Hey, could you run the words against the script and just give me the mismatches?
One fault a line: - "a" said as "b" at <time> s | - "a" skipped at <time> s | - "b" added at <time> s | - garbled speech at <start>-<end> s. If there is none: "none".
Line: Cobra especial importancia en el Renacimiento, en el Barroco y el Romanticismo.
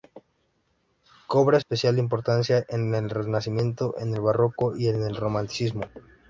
- "en" added at 4.9 s